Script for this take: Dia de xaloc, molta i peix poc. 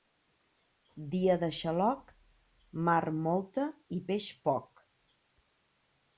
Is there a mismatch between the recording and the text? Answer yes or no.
yes